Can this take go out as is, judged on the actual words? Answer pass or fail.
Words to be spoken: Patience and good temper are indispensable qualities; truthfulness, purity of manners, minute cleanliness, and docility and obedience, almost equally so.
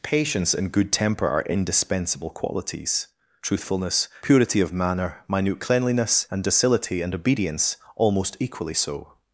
fail